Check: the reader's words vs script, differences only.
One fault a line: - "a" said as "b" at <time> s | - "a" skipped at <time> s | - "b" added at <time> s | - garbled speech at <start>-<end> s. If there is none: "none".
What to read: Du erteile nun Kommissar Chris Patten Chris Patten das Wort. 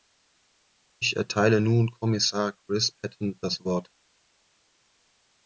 - "Du" said as "Ich" at 1.0 s
- "Chris Patten" skipped at 3.4 s